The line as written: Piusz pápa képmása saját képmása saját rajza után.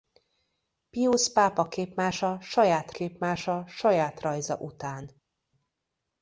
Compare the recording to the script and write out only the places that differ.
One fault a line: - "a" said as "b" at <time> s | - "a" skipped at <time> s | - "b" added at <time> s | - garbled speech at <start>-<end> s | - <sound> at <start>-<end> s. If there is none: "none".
none